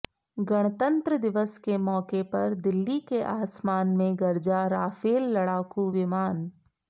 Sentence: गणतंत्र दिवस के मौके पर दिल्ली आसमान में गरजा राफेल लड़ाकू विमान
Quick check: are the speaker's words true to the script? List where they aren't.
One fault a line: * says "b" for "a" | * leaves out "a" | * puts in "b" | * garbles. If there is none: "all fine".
* puts in "के"